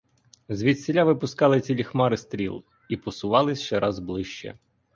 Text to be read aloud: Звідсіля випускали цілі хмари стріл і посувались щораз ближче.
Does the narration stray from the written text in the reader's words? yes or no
no